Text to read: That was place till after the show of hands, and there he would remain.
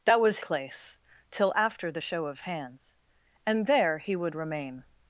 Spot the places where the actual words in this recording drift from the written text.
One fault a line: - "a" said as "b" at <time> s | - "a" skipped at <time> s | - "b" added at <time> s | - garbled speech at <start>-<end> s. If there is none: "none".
none